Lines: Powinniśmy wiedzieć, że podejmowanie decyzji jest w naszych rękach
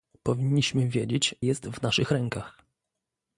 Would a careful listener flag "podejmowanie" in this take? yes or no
yes